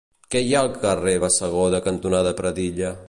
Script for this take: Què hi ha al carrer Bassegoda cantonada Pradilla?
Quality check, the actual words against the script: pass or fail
pass